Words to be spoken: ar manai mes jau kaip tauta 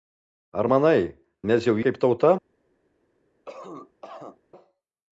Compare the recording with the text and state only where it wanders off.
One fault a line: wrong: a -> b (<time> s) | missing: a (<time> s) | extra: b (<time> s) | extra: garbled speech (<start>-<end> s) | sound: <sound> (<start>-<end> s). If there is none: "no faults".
sound: cough (3.5-4.4 s)